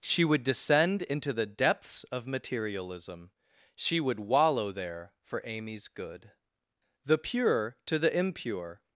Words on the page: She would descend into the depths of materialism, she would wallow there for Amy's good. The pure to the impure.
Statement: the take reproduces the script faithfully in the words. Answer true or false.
true